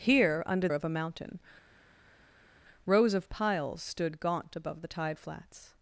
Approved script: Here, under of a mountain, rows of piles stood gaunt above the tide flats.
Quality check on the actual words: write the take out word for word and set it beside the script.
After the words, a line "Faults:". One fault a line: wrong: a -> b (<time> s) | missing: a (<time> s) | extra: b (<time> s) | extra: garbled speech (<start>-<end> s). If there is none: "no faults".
Here, under of a mountain, rows of piles stood gaunt above the tide flats.
Faults:
no faults